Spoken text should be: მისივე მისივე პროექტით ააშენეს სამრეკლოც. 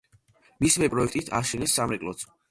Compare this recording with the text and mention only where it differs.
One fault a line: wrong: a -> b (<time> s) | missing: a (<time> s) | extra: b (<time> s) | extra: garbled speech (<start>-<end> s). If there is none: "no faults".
missing: მისივე (0.9 s)